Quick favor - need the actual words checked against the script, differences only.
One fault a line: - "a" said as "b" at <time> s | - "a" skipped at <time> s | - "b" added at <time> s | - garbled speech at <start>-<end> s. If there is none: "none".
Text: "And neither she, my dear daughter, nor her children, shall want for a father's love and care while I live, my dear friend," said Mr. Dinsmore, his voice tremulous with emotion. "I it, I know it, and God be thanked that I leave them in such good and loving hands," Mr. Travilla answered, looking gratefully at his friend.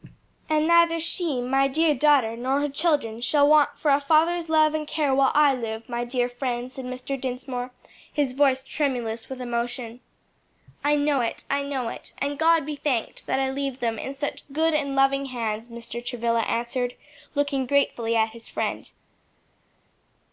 - "know" added at 10.9 s